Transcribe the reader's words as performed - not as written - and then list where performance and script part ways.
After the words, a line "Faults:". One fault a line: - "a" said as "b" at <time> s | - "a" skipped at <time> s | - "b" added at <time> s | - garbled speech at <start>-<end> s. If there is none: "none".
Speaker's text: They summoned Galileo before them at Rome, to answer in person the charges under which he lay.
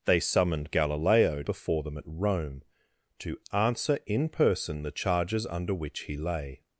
They summoned Galileo before them at Rome, to answer in person the charges under which he lay.
Faults:
none